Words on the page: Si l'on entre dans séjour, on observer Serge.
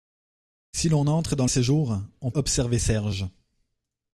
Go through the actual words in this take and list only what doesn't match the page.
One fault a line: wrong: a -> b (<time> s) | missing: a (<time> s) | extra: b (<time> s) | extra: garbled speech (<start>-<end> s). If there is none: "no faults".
no faults